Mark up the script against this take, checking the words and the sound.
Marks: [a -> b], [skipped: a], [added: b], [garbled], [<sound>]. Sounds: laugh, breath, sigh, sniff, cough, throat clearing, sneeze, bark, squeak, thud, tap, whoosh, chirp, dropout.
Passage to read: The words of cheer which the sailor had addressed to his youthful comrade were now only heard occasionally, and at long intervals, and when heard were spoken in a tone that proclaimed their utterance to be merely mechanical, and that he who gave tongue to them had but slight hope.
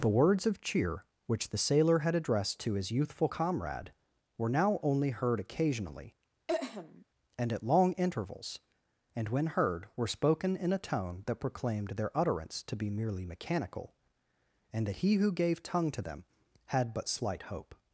The words of cheer which the sailor had addressed to his youthful comrade were now only heard occasionally, [throat clearing] and at long intervals, and when heard were spoken in a tone that proclaimed their utterance to be merely mechanical, and that he who gave tongue to them had but slight hope.